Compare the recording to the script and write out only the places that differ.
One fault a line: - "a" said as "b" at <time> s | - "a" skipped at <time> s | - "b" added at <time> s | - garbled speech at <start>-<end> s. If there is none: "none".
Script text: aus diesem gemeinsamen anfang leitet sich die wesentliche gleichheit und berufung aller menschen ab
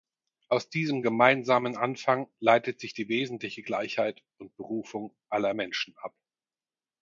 none